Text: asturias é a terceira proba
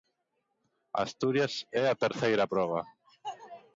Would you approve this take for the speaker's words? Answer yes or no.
yes